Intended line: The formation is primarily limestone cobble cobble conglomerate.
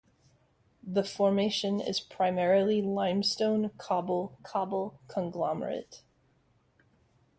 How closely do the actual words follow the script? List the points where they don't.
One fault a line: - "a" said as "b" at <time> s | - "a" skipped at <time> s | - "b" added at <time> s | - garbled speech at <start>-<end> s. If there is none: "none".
none